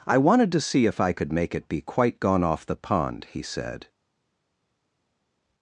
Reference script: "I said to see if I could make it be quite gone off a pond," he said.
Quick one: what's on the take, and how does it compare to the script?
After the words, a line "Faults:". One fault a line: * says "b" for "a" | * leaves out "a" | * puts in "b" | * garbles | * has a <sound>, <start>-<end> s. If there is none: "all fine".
"I wanted to see if I could make it be quite gone off the pond," he said.
Faults:
* says "wanted" for "said"
* says "the" for "a"